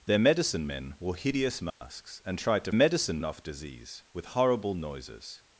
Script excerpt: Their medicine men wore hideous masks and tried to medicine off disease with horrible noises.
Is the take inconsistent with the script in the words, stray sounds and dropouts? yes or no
yes